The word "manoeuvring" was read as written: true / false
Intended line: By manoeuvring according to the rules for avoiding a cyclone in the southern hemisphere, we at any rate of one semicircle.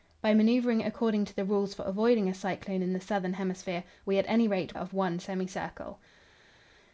true